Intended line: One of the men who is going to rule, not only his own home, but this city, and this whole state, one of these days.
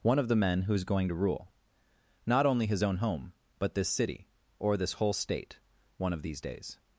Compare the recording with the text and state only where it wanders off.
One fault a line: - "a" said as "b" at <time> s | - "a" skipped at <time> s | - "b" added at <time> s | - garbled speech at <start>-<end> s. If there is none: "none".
- "and" said as "or" at 4.6 s